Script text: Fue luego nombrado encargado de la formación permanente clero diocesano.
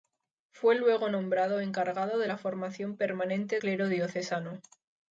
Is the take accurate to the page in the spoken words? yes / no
yes